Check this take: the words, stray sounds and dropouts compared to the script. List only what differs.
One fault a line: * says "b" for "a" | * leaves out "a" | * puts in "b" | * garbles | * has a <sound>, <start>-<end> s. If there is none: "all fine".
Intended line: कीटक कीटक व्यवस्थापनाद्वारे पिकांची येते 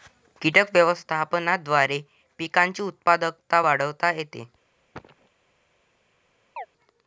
* leaves out "कीटक"
* puts in "उत्पादकता वाढवता"
* has a cough, 4.9-5.3 s
* has a chirp, 6.6-6.7 s